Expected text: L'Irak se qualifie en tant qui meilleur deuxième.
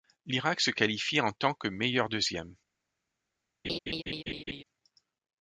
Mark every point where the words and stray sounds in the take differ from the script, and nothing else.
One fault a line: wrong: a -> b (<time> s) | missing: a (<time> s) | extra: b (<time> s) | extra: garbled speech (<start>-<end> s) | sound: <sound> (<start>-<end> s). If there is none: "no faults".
wrong: qui -> que (1.5 s)
sound: laugh (3.6-4.6 s)